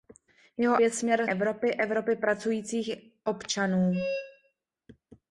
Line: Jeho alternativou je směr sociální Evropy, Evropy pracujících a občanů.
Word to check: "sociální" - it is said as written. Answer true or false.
false